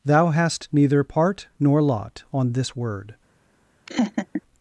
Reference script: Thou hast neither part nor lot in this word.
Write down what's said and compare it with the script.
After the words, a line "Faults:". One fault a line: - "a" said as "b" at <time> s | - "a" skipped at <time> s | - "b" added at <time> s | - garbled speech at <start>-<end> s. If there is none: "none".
Thou hast neither part nor lot on this word.
Faults:
- "in" said as "on" at 2.3 s